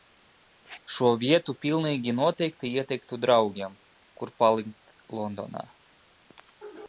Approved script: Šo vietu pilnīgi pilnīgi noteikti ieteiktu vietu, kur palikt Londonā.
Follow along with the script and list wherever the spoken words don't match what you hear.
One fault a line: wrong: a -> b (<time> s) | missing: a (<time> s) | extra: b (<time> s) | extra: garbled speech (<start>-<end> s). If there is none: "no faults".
missing: pilnīgi (2.1 s)
wrong: vietu -> draugiem (3.3 s)